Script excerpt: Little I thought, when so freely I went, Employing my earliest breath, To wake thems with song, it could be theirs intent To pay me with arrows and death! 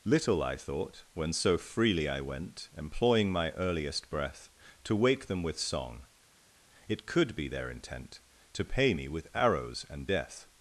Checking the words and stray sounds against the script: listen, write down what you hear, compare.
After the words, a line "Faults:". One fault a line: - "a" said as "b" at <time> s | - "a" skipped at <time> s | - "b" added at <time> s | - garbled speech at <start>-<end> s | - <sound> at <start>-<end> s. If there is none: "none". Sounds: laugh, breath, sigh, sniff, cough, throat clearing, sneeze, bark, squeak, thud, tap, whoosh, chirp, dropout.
Little I thought, when so freely I went, Employing my earliest breath, To wake them with song, it could be their intent To pay me with arrows and death!
Faults:
- "thems" said as "them" at 5.3 s
- "theirs" said as "their" at 7.5 s